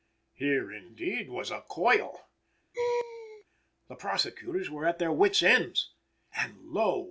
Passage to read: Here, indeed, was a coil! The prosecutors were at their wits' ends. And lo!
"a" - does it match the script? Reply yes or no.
yes